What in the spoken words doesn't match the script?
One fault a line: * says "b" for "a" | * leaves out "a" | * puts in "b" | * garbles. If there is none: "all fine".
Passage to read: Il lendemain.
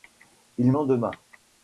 all fine